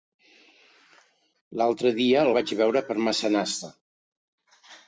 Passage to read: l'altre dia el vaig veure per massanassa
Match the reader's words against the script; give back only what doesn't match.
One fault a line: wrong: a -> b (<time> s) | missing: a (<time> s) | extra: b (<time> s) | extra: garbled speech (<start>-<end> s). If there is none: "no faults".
no faults